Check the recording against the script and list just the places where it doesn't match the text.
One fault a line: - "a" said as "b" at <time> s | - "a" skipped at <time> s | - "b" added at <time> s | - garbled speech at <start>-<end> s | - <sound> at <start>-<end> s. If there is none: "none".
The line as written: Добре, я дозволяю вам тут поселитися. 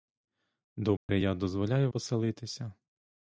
- dropout at 1.0-1.1 s
- "вам тут" skipped at 1.9 s